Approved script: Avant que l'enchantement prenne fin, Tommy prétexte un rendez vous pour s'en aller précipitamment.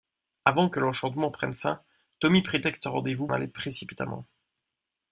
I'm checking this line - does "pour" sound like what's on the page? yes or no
no